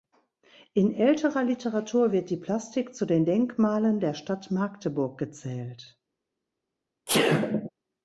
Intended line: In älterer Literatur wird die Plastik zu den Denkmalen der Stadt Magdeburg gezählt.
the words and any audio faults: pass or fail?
fail